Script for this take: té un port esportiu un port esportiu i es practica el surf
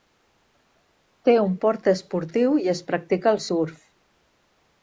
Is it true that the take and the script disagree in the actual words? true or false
true